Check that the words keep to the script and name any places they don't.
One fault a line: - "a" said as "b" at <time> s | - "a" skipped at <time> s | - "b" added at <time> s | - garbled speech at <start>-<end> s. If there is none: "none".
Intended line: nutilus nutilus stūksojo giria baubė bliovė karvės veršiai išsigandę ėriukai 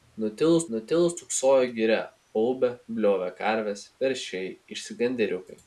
none